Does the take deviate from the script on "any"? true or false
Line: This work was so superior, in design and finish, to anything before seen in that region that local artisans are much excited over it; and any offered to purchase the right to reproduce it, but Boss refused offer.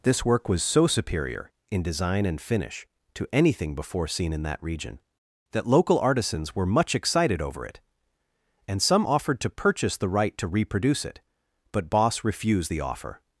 true